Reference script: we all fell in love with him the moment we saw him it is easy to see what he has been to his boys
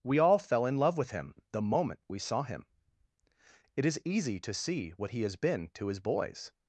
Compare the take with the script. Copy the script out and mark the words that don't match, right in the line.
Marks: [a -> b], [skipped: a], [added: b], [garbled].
we all fell in love with him the moment we saw him it is easy to see what he has been to his boys